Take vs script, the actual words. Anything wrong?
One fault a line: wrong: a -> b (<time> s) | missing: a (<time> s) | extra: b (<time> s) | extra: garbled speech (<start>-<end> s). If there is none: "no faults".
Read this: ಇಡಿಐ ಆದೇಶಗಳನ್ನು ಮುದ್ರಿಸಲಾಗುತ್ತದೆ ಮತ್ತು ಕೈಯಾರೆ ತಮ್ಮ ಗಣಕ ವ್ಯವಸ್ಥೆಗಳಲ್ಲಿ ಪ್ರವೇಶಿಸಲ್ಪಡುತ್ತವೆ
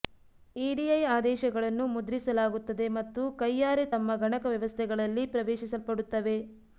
no faults